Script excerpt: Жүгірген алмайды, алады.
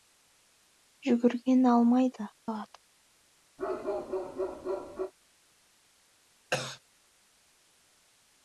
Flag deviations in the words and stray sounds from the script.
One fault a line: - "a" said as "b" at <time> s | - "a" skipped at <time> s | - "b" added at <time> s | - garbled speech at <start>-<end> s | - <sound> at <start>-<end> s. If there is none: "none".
- bark at 3.6-5.1 s
- cough at 6.5-6.8 s